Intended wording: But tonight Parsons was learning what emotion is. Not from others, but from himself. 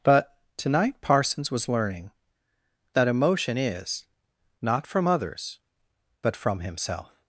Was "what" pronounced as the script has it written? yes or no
no